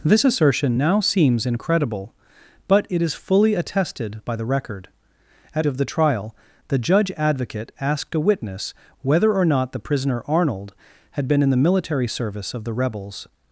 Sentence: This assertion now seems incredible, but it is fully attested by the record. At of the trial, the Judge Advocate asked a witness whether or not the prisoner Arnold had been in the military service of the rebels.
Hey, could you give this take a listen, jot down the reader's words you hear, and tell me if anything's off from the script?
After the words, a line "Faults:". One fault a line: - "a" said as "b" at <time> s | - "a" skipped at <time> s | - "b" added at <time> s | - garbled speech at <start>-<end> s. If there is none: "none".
This assertion now seems incredible, but it is fully attested by the record. At of the trial, the Judge Advocate asked a witness whether or not the prisoner Arnold had been in the military service of the rebels.
Faults:
none